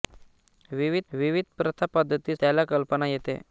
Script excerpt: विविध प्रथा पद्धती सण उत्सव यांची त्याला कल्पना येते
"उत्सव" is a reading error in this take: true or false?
true